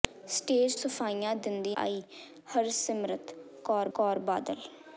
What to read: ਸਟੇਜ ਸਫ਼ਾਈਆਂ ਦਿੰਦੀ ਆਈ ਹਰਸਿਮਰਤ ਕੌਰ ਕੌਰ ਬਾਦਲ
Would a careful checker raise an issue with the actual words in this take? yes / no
no